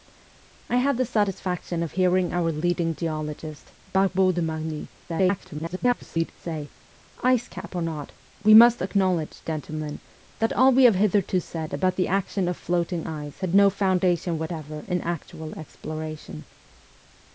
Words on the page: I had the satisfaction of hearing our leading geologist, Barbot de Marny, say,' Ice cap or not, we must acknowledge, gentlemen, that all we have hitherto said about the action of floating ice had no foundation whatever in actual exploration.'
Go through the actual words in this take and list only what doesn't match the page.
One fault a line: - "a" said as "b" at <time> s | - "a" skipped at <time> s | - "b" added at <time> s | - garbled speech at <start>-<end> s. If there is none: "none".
- garbled speech at 5.1-6.3 s